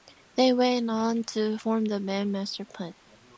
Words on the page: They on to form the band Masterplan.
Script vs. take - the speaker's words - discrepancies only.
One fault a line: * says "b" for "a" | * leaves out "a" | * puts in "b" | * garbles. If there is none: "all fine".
* puts in "went"